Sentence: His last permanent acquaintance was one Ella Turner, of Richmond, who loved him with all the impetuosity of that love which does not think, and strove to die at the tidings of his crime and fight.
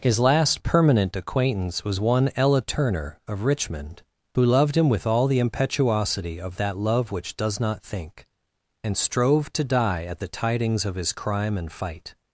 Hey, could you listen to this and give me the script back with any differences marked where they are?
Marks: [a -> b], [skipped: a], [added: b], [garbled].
His last permanent acquaintance was one Ella Turner, of Richmond, who loved him with all the impetuosity of that love which does not think, and strove to die at the tidings of his crime and fight.